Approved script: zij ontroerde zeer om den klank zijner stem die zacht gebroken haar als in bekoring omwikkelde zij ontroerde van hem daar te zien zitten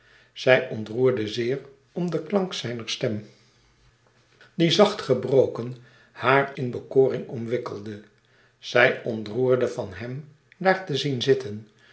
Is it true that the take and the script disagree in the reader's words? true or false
true